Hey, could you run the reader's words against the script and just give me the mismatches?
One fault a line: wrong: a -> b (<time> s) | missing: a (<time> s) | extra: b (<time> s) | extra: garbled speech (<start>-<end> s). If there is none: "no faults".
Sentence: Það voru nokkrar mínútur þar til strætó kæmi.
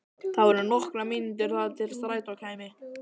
no faults